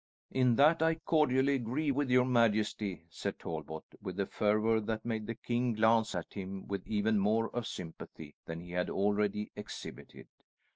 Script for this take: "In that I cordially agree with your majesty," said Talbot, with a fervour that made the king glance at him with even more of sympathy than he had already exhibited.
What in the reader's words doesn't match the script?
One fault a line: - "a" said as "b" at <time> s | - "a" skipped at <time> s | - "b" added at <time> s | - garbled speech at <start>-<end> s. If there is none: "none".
none